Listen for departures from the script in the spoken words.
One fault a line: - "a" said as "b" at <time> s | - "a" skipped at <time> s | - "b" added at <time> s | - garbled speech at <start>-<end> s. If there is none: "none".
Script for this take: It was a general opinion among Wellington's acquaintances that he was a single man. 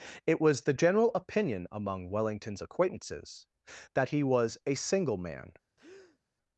- "a" said as "the" at 0.6 s